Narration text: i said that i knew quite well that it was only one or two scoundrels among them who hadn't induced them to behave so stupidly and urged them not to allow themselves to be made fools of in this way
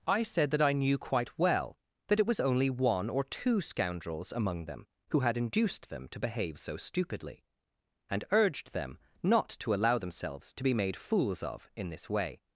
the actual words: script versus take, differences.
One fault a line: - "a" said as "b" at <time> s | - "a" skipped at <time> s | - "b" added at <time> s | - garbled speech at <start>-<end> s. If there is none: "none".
- "hadn't" said as "had" at 5.2 s